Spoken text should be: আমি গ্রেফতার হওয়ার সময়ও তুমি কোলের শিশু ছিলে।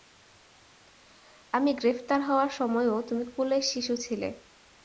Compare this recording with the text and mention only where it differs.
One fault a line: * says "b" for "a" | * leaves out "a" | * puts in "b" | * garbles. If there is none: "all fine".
all fine